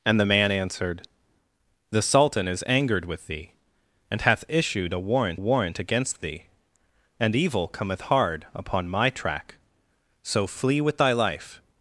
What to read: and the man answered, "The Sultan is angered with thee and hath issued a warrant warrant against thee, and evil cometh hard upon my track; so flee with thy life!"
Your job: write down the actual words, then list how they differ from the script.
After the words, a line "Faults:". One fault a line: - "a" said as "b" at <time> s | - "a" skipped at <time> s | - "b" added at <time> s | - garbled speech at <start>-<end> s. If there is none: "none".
and the man answered, "The Sultan is angered with thee and hath issued a warrant warrant against thee, and evil cometh hard upon my track; so flee with thy life!"
Faults:
none